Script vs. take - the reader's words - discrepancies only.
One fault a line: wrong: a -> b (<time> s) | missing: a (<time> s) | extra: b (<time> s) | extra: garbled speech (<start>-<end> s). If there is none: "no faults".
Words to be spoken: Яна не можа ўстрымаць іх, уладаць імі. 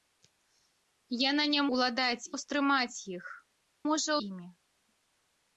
wrong: можа -> уладаць (1.8 s)
wrong: уладаць -> можа (3.9 s)